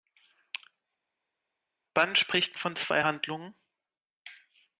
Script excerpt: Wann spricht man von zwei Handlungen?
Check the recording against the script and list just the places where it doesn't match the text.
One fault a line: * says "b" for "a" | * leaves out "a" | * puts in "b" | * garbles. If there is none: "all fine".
* leaves out "man"